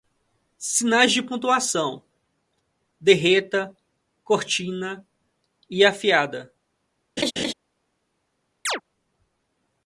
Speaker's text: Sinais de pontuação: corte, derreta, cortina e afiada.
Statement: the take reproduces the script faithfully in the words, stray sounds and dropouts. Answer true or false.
false